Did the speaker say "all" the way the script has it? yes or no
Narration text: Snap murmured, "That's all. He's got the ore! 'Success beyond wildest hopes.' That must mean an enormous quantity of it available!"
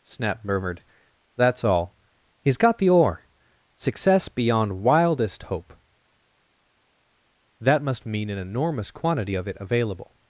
yes